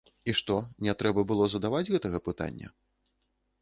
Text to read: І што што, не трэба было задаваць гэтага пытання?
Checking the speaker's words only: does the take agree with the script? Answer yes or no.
no